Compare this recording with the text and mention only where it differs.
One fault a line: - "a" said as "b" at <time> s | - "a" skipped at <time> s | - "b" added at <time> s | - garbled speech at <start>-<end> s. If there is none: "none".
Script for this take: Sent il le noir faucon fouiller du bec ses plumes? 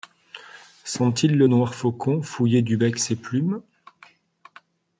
none